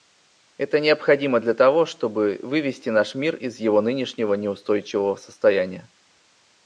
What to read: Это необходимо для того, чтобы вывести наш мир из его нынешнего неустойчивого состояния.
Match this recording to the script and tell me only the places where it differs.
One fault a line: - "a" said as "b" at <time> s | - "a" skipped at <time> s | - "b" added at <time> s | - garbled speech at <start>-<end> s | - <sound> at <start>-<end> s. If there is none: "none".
none